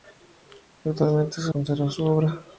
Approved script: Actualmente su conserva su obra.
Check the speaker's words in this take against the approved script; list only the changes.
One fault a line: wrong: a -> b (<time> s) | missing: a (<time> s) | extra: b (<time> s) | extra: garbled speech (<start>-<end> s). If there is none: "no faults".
no faults